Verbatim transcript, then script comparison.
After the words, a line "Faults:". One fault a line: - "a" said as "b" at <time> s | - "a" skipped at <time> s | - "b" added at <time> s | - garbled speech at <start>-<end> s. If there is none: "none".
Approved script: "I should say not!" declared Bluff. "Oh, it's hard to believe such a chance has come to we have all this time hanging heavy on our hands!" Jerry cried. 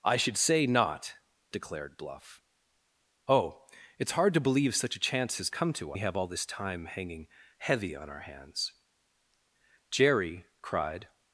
"I should say not!" declared Bluff. "Oh, it's hard to believe such a chance has come to we have all this time hanging heavy on our hands!" Jerry cried.
Faults:
none